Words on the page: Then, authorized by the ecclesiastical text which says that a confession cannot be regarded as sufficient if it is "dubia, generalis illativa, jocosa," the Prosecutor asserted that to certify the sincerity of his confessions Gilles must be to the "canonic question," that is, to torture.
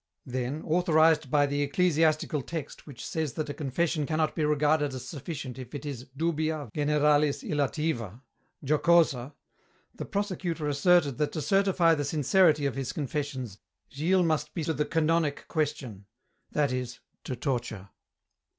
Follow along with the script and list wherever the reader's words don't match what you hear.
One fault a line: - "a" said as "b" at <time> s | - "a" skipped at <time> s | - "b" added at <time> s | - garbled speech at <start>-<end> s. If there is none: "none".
none